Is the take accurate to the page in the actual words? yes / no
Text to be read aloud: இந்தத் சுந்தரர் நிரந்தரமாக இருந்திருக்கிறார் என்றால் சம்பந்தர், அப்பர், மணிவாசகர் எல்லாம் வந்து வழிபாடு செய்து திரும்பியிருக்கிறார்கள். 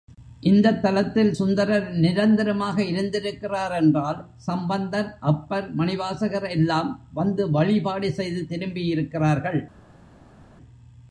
no